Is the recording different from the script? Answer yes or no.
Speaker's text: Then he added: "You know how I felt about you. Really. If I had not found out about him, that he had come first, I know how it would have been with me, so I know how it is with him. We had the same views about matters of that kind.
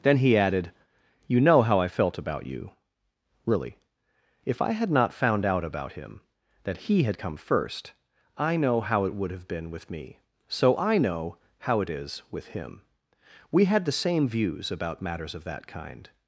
no